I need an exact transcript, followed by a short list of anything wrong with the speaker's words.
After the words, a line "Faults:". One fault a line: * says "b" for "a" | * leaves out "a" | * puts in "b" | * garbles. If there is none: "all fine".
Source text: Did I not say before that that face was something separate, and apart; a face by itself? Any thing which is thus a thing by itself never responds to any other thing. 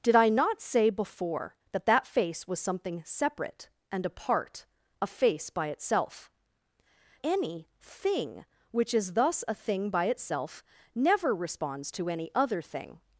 Did I not say before that that face was something separate, and apart; a face by itself? Any thing which is thus a thing by itself never responds to any other thing.
Faults:
all fine